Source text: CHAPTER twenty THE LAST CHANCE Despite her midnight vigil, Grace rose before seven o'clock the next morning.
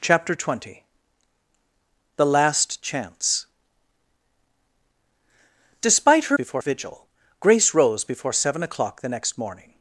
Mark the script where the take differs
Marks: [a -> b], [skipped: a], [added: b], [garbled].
CHAPTER twenty THE LAST CHANCE Despite her [midnight -> before] vigil, Grace rose before seven o'clock the next morning.